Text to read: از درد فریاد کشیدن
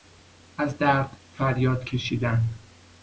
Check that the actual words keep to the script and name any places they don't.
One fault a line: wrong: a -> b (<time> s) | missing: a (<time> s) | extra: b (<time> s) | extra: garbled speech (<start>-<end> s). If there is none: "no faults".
no faults